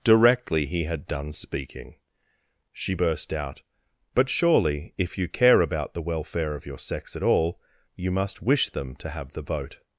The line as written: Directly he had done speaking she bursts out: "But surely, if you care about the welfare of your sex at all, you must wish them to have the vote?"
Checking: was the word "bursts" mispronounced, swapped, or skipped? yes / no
yes